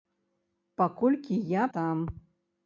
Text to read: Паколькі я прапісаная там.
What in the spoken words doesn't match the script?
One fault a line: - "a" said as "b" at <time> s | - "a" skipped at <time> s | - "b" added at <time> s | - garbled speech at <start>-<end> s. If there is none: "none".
- "прапісаная" skipped at 1.6 s